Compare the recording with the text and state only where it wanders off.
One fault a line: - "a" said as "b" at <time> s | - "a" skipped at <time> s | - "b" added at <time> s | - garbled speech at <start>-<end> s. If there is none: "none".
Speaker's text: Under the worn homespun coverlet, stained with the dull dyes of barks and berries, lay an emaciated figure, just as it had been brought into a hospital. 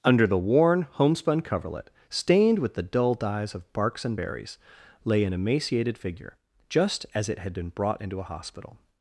none